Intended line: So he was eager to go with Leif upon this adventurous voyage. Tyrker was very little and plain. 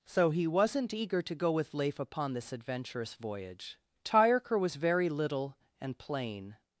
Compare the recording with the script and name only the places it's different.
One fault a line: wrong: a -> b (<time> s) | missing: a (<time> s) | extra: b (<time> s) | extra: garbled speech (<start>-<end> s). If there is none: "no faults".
wrong: was -> wasn't (0.5 s)